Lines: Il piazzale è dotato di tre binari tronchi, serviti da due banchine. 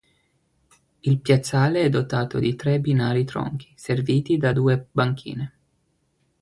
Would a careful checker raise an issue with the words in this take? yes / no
no